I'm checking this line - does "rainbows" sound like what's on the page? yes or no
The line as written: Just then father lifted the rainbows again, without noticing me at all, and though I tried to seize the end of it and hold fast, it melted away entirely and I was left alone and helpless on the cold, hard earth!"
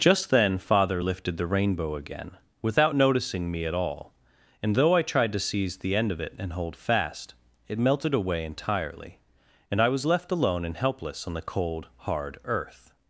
no